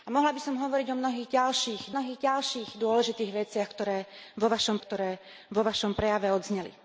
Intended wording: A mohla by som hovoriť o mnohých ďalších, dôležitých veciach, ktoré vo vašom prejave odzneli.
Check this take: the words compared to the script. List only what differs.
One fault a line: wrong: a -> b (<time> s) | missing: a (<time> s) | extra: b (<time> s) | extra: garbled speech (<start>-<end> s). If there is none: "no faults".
extra: mnohých ďalších (1.9 s)
extra: ktoré vo vašom (4.8 s)